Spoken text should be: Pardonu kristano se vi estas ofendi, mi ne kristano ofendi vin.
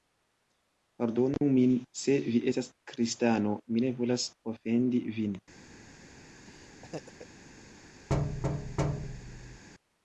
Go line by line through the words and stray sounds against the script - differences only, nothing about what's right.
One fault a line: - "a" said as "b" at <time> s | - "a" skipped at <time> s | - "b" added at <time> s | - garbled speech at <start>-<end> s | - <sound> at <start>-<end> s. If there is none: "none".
- "kristano" said as "min" at 1.6 s
- "ofendi" said as "kristano" at 2.9 s
- "kristano" said as "volas" at 4.0 s
- laugh at 6.5-7.3 s
- thud at 8.1-9.6 s